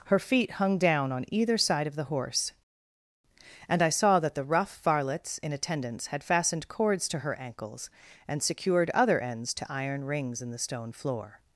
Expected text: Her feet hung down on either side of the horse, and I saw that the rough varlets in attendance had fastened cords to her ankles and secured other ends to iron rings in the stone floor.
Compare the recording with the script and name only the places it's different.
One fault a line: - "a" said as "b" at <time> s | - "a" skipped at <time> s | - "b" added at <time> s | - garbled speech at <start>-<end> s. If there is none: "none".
none